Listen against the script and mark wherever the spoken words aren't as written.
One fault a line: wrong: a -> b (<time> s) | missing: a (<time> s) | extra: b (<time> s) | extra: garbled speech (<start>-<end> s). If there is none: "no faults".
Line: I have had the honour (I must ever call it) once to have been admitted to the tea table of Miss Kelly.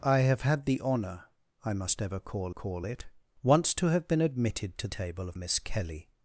extra: call (2.5 s)
missing: the tea (4.9 s)